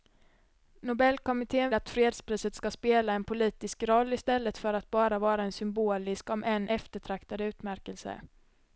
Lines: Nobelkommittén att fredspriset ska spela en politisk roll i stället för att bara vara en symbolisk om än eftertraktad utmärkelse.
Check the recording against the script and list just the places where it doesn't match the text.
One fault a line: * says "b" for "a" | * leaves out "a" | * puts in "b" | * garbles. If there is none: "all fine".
all fine